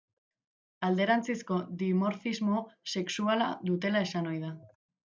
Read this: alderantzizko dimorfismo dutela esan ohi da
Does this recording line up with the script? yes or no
no